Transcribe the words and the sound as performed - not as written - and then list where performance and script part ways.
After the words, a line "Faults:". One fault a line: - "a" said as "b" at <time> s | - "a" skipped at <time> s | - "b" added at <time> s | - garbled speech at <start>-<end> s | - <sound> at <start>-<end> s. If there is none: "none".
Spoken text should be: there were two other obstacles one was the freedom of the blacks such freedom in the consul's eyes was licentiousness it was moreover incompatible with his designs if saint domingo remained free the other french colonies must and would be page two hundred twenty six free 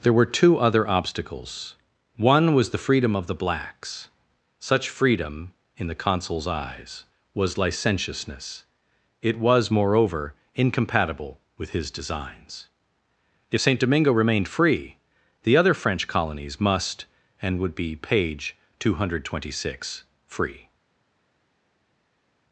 there were two other obstacles one was the freedom of the blacks such freedom in the consul's eyes was licentiousness it was moreover incompatible with his designs if saint domingo remained free the other french colonies must and would be page two hundred twenty six free
Faults:
none